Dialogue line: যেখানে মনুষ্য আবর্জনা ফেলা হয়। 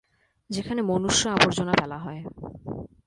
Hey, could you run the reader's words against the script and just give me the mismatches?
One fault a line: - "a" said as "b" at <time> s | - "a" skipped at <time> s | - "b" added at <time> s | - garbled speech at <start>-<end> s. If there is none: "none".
none